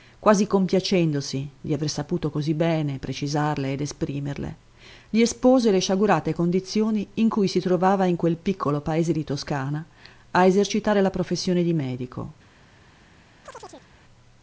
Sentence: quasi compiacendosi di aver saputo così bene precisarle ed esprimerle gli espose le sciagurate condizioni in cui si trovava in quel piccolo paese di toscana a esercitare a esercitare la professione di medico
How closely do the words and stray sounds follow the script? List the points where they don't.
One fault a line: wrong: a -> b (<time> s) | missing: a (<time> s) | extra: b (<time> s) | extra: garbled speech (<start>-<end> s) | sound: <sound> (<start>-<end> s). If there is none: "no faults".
missing: a esercitare (11.0 s)
sound: chirp (13.4-13.9 s)